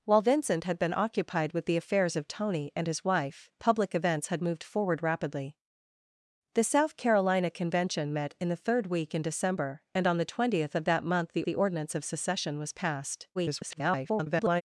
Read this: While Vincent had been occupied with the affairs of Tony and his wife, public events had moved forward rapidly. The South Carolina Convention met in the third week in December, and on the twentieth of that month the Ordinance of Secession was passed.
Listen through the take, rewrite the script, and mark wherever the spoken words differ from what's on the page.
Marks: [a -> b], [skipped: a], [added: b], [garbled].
While Vincent had been occupied with the affairs of Tony and his wife, public events had moved forward rapidly. The South Carolina Convention met in the third week in December, and on the twentieth of that month the [added: the] Ordinance of Secession was passed. [garbled]